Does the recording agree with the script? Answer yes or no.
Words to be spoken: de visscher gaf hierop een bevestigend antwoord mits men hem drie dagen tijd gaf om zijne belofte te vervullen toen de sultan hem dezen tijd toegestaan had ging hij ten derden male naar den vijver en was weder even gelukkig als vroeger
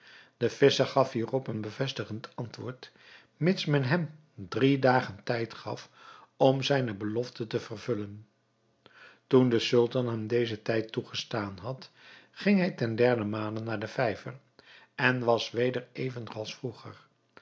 no